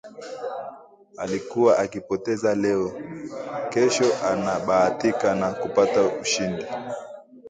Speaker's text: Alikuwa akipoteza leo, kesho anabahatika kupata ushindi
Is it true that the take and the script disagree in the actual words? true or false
true